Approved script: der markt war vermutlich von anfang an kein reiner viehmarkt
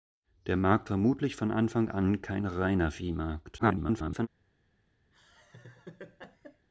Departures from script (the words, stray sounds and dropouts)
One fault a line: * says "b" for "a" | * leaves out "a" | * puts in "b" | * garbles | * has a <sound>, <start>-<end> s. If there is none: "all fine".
* leaves out "war"
* garbles
* has a laugh, 5.1-6.7 s